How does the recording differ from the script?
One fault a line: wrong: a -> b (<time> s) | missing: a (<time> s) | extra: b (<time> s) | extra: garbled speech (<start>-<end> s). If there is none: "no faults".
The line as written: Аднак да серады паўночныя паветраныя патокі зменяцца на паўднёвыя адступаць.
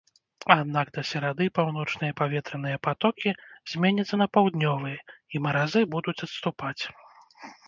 extra: і маразы будуць (5.3 s)